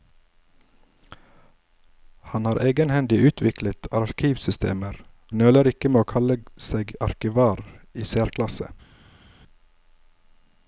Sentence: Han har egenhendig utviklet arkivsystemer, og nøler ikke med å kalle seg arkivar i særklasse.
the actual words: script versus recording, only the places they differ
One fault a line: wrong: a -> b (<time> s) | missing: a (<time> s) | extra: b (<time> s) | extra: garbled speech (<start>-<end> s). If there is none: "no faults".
missing: og (5.0 s)